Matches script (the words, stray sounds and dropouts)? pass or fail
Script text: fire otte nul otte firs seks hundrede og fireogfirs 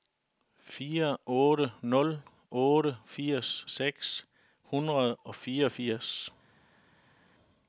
pass